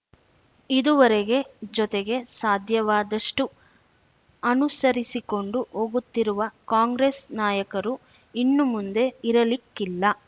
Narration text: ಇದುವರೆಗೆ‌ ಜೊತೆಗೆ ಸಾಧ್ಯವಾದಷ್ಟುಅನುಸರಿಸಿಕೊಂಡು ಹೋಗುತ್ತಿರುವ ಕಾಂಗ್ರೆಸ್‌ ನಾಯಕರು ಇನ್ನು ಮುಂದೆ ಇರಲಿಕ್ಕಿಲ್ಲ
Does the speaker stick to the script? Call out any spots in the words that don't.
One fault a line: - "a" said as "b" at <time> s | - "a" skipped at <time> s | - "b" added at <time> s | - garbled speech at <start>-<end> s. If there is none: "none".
none